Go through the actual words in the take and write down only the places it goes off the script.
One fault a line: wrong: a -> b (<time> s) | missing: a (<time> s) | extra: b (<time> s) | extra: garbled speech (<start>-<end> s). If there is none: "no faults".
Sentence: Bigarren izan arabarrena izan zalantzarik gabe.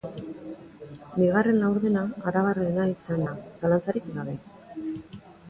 wrong: izan -> laurdena (1.6 s)
extra: da (3.2 s)